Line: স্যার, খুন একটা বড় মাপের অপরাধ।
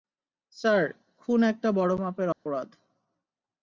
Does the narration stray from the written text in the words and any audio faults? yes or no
yes